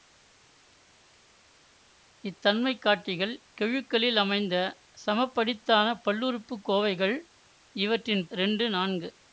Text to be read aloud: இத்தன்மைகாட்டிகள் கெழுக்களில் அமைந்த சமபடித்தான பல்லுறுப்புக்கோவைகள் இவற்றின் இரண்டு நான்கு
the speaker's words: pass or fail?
pass